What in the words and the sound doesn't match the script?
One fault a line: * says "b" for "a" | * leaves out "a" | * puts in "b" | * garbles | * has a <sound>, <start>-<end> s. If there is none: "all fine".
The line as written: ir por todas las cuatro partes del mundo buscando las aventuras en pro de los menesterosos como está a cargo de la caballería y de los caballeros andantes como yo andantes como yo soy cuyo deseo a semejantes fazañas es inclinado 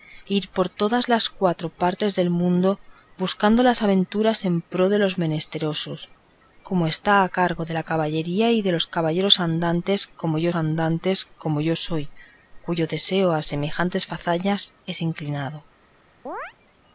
* has a chirp, 16.3-16.5 s